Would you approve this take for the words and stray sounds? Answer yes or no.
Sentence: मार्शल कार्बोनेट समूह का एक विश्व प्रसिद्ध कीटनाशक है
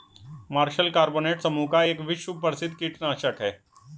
yes